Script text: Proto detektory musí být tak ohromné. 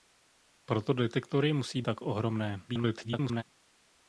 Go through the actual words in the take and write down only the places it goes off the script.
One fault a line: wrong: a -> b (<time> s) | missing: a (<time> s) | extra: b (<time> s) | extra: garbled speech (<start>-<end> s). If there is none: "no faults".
missing: být (1.8 s)
extra: garbled speech (2.7-3.4 s)